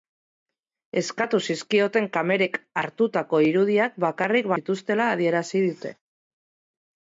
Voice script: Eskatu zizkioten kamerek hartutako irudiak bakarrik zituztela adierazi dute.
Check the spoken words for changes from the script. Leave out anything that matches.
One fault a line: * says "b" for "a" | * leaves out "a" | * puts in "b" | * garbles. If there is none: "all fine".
all fine